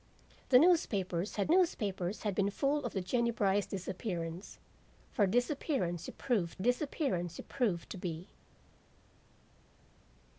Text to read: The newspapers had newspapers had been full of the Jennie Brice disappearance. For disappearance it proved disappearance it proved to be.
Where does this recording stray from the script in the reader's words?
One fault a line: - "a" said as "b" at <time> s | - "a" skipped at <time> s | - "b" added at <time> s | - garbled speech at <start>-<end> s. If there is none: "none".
none